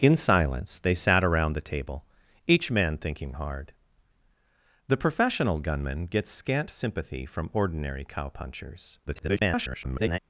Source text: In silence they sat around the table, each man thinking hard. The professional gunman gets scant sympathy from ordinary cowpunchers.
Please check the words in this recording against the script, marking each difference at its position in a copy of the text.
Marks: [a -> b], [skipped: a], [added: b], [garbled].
In silence they sat around the table, each man thinking hard. The professional gunman gets scant sympathy from ordinary cowpunchers. [garbled]